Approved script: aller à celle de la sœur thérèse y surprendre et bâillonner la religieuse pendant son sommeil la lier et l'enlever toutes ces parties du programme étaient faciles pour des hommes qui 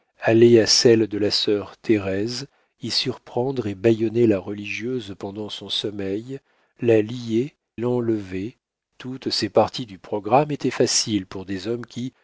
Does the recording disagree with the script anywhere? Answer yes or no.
yes